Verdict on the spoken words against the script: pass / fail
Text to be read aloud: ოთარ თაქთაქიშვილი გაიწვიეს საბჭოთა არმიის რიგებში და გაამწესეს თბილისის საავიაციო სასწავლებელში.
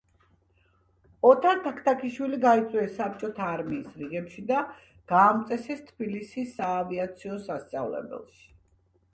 pass